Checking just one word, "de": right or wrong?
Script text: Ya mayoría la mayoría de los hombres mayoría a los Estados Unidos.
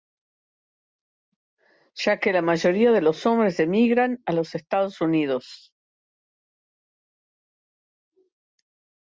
right